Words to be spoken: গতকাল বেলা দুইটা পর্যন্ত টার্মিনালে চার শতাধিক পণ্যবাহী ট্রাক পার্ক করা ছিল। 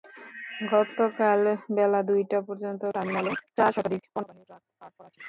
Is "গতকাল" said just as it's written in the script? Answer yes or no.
yes